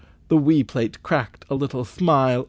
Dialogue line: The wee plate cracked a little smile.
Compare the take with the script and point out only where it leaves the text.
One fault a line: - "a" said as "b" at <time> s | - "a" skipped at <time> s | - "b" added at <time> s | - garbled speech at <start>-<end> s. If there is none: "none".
none